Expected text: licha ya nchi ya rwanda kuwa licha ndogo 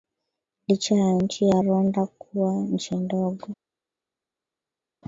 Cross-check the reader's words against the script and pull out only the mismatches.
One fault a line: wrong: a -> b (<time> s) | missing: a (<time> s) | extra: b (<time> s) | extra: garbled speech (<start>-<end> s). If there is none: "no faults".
wrong: licha -> nchi (2.5 s)